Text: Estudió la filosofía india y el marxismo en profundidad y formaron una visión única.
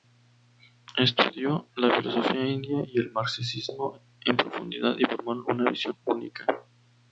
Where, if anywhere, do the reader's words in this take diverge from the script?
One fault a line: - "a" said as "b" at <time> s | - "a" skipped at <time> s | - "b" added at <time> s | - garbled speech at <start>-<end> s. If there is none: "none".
none